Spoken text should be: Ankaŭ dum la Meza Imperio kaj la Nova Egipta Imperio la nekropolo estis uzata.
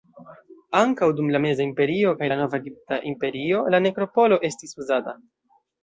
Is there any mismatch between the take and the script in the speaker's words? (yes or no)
no